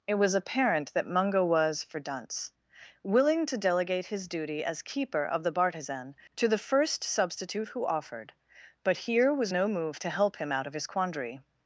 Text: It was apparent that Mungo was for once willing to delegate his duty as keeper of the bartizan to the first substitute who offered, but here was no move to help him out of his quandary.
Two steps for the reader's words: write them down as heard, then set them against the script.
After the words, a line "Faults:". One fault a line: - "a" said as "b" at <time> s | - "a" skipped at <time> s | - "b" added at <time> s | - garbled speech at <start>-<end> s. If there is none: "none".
It was apparent that Mungo was for dunce willing to delegate his duty as keeper of the bartizan to the first substitute who offered, but here was no move to help him out of his quandary.
Faults:
- "once" said as "dunce" at 2.0 s